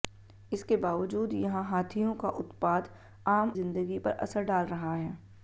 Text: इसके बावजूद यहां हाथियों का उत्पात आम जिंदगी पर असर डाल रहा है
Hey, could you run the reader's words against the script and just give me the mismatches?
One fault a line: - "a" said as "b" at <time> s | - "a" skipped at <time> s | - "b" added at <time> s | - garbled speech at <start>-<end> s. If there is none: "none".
none